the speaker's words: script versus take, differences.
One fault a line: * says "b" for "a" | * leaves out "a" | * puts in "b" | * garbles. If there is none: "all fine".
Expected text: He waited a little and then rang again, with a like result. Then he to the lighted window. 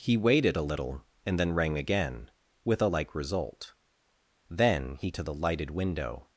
all fine